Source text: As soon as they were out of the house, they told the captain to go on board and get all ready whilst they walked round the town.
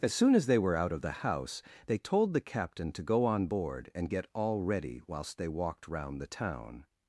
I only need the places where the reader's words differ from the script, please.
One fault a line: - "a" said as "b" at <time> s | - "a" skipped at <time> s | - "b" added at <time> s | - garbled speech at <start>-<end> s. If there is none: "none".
none